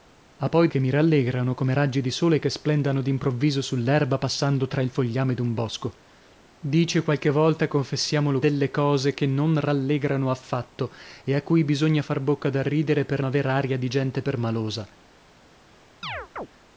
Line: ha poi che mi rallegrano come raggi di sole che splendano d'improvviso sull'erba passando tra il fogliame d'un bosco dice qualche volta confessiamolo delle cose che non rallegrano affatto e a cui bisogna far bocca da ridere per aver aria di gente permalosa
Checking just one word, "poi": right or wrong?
right